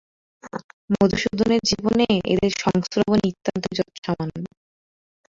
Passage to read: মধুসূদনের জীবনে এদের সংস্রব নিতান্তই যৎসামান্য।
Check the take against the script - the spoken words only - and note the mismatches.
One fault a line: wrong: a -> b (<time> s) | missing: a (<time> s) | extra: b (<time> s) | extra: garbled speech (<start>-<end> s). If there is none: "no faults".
no faults